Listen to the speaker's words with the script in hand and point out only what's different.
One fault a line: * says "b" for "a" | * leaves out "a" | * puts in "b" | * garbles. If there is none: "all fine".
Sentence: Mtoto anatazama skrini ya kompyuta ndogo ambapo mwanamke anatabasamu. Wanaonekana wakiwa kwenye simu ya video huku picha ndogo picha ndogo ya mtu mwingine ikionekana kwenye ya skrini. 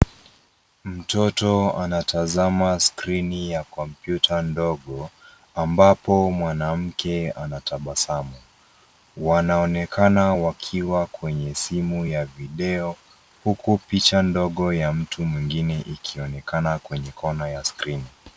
* leaves out "picha ndogo"
* puts in "kona"